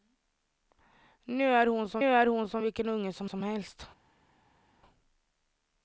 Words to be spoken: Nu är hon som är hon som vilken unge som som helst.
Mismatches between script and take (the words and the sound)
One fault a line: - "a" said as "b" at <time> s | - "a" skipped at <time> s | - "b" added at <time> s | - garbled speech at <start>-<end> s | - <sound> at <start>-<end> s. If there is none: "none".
none